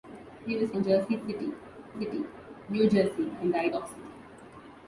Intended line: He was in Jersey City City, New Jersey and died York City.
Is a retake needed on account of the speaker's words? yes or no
no